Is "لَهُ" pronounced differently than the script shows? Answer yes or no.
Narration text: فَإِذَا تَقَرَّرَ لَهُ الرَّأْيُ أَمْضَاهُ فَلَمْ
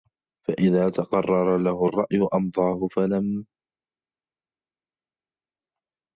no